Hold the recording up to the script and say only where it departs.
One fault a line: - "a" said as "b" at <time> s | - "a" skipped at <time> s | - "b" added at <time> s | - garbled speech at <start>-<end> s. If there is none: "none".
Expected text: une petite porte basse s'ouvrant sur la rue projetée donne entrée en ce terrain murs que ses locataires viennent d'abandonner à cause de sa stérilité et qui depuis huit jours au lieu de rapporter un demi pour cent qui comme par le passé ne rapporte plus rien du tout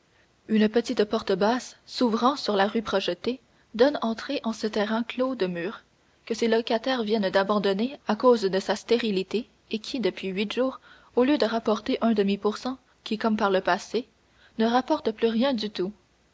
- "clos de" added at 5.0 s